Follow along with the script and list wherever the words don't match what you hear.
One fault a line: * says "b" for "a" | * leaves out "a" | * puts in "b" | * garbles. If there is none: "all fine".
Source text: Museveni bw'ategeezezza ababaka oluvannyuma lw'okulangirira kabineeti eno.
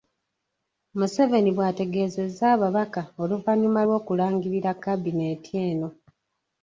all fine